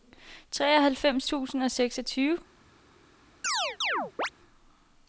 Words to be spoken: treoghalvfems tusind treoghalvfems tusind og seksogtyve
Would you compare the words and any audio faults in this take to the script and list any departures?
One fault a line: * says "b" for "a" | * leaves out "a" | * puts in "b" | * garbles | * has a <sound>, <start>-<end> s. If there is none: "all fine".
* leaves out "treoghalvfems tusind"
* has a chirp, 3.4-4.3 s